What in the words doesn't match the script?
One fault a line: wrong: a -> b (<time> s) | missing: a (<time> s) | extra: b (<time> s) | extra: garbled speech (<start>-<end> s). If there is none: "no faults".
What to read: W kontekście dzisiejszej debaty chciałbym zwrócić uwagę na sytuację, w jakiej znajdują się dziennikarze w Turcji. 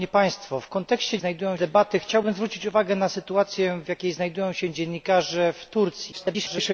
wrong: dzisiejszej -> znajdują (1.2 s)
extra: garbled speech (6.1-6.7 s)